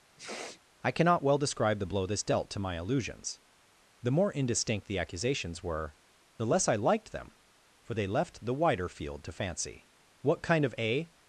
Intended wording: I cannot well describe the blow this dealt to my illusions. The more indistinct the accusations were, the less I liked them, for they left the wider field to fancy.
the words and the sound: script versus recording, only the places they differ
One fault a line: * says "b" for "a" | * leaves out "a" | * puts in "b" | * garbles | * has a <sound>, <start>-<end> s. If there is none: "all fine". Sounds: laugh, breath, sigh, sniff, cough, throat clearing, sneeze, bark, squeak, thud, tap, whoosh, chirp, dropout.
* has a sniff, 0.2-0.6 s
* puts in "What kind of a"